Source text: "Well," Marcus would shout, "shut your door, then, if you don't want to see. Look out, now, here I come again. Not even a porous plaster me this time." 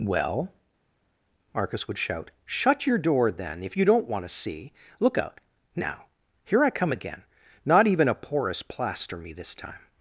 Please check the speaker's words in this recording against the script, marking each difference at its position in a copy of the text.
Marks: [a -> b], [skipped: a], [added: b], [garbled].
"Well," Marcus would shout, "shut your door, then, if you don't want to see. Look out, now, here I come again. Not even a porous plaster me this time."